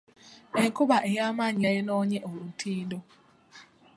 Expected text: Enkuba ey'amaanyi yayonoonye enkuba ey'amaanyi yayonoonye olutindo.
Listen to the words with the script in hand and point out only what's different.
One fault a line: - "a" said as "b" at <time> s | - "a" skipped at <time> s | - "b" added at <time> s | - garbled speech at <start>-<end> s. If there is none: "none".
- "enkuba ey'amaanyi yayonoonye" skipped at 2.2 s